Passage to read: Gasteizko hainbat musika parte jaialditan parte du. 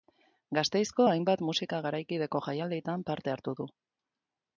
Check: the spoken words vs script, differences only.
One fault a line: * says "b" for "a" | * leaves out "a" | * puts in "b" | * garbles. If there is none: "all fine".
* says "garaikideko" for "parte"
* puts in "hartu"